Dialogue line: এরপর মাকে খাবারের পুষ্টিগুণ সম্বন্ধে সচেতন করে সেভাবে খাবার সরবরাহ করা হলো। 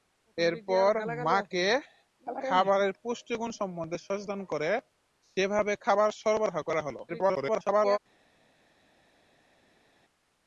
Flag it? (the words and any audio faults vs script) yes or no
yes